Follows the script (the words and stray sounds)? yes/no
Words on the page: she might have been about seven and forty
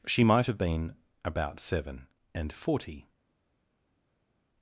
yes